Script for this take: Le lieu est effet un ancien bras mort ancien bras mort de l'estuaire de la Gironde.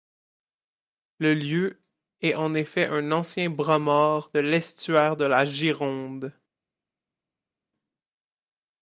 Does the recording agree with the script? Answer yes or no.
no